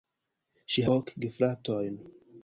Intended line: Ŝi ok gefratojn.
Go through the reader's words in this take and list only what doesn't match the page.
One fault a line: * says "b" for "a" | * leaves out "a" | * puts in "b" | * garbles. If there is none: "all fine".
all fine